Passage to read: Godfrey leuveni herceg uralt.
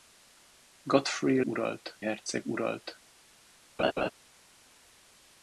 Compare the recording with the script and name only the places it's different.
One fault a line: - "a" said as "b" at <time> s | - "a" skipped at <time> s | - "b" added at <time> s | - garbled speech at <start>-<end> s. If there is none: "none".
- "leuveni" said as "uralt" at 1.4 s